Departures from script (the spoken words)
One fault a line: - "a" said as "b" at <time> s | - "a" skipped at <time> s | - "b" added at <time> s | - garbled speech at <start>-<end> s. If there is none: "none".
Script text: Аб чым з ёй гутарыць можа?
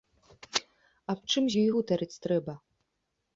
- "можа" said as "трэба" at 2.3 s